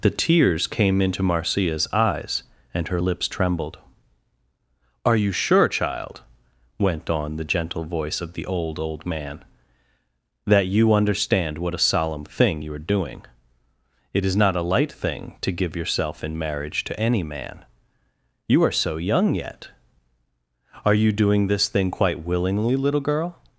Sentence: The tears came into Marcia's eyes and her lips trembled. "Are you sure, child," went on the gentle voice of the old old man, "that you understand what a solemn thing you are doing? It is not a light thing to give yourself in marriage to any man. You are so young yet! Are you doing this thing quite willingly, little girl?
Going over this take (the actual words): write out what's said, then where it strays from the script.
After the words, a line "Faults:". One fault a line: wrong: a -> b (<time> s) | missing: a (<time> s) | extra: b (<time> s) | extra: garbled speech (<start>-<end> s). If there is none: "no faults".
The tears came into Marcia's eyes and her lips trembled. "Are you sure, child," went on the gentle voice of the old old man, "that you understand what a solemn thing you are doing? It is not a light thing to give yourself in marriage to any man. You are so young yet! Are you doing this thing quite willingly, little girl?
Faults:
no faults